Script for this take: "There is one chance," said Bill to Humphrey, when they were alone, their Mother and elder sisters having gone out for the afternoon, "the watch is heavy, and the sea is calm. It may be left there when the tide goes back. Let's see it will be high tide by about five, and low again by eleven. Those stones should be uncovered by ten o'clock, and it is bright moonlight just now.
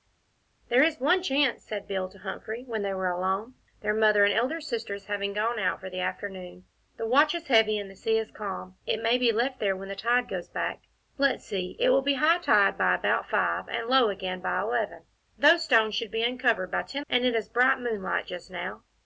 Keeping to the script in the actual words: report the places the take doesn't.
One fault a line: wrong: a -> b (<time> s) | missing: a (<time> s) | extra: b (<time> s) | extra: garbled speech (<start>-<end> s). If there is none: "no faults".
missing: o'clock (17.0 s)